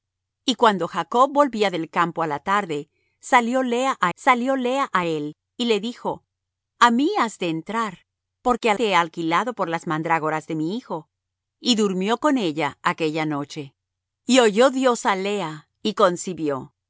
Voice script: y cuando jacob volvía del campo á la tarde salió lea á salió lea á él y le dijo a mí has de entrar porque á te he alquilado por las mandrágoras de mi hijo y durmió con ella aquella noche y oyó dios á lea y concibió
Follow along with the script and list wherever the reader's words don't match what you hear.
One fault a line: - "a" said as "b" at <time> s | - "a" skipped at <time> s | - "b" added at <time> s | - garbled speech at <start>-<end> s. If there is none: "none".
none